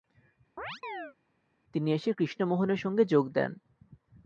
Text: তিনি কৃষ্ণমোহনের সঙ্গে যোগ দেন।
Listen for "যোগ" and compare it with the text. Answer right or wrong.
right